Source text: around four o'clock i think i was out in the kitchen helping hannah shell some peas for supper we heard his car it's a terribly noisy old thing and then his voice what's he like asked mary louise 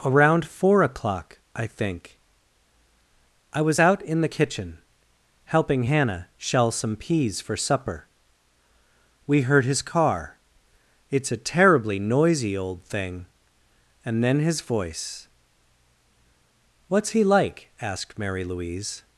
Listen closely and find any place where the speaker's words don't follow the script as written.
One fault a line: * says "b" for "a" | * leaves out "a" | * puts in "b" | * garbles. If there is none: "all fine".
all fine